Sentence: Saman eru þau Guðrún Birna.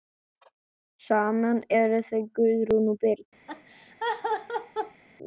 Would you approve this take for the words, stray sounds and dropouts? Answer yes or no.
no